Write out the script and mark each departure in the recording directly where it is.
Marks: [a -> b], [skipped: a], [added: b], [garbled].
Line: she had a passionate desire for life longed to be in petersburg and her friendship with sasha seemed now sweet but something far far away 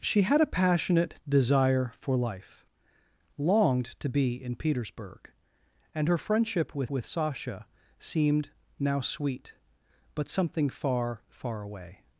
she had a passionate desire for life longed to be in petersburg and her friendship with [added: with] sasha seemed now sweet but something far far away